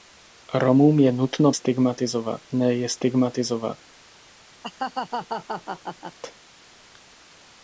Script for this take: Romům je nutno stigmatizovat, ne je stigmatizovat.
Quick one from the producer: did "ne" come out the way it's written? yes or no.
yes